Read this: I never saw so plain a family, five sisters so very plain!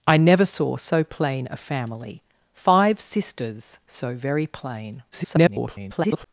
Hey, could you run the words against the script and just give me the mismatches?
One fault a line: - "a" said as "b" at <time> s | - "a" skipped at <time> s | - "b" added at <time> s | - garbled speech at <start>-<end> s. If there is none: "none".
- garbled speech at 5.1-6.3 s